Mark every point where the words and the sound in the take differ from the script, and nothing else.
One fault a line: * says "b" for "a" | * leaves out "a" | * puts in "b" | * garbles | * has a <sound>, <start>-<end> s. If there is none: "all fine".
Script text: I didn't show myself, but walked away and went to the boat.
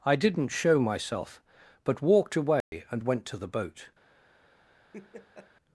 * has a dropout, 2.6-2.7 s
* has a laugh, 4.9-5.5 s